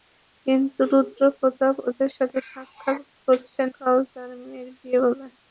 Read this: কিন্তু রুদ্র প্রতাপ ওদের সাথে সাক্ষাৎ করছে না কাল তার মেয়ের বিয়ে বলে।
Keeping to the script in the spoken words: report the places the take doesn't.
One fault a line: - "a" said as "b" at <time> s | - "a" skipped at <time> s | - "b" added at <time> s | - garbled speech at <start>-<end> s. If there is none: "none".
- "না" skipped at 3.6 s